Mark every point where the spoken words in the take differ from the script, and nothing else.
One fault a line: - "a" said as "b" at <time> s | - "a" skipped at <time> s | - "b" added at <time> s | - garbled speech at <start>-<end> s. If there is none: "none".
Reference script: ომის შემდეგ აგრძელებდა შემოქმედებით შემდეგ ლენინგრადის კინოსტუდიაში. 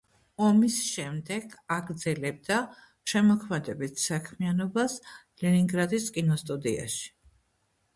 - "შემდეგ" said as "საქმიანობას" at 4.1 s